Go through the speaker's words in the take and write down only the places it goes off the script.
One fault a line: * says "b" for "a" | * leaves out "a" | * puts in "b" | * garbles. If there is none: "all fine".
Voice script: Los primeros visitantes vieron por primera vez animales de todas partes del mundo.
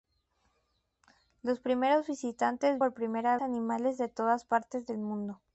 * leaves out "vieron"
* leaves out "vez"